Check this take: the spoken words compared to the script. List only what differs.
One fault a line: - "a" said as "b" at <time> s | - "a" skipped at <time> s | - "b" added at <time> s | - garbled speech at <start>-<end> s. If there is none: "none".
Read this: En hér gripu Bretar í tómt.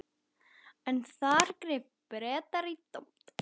- "hér" said as "þar" at 1.1 s